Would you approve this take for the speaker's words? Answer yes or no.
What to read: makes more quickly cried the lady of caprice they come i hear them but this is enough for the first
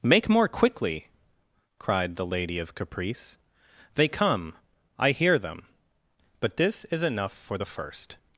no